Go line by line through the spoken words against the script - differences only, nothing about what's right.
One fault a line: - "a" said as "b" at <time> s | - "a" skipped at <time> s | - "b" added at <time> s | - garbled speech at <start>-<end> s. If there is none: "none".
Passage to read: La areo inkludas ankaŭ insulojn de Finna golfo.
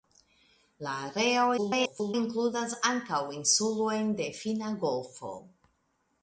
- garbled speech at 1.6-2.1 s